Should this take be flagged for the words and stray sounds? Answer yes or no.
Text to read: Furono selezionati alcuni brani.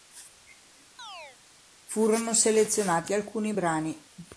yes